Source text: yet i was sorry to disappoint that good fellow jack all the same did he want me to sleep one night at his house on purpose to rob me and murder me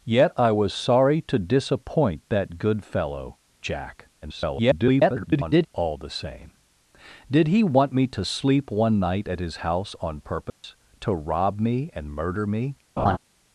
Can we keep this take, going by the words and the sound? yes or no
no